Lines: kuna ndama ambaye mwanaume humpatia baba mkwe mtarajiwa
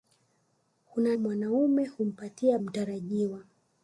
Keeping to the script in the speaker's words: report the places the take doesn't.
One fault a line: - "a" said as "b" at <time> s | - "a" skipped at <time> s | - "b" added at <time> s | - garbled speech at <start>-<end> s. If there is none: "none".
- "ndama ambaye" skipped at 1.1 s
- "baba mkwe" skipped at 2.6 s